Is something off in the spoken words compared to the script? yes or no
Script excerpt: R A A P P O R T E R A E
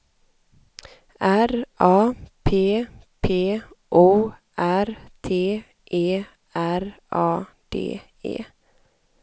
yes